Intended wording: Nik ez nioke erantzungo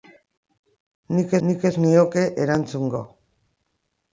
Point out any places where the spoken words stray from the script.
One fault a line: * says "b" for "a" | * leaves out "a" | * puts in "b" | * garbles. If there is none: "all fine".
* puts in "nik"